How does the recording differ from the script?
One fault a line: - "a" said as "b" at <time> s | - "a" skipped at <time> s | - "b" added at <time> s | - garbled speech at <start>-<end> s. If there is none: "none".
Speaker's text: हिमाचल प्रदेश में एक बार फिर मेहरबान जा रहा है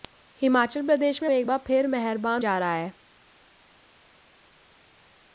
none